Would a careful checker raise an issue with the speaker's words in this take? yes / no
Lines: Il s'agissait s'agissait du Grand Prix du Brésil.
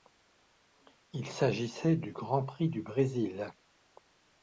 yes